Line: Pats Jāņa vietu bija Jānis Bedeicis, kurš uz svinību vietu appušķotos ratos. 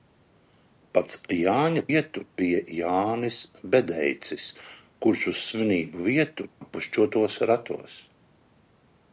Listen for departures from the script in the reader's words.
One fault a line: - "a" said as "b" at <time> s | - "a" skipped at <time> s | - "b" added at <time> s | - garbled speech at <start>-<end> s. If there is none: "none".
none